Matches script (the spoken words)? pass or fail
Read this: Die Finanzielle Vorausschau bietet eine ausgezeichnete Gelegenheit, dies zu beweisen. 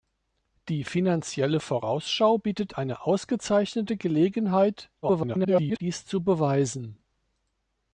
fail